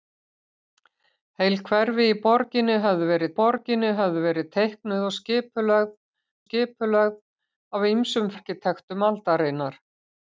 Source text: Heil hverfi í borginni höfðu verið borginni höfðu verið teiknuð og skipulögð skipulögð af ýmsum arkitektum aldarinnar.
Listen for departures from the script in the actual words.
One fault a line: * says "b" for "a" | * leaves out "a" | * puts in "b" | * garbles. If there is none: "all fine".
all fine